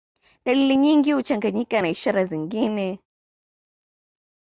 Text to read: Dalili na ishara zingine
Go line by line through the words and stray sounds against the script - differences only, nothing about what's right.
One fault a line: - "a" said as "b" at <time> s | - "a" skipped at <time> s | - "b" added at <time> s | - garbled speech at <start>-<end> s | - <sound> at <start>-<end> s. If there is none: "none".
- "nyingi huchanganyika" added at 0.8 s